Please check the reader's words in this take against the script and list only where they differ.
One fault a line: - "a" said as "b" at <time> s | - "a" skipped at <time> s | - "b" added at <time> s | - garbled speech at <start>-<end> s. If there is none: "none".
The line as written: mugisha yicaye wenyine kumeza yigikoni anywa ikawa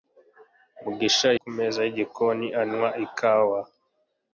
- "yicaye wenyine" skipped at 1.3 s